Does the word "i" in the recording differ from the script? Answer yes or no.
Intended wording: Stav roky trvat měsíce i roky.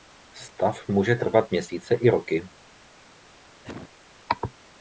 no